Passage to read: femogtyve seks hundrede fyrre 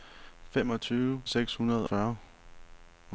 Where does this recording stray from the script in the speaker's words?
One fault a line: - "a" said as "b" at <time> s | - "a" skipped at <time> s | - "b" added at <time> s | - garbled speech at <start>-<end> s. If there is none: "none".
none